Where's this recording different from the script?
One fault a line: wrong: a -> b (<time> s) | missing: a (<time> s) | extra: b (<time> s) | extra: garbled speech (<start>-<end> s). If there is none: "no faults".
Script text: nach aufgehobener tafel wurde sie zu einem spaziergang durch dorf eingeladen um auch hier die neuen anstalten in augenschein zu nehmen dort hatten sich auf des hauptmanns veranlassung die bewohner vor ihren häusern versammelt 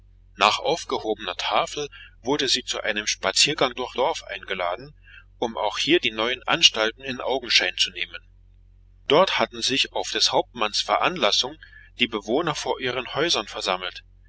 no faults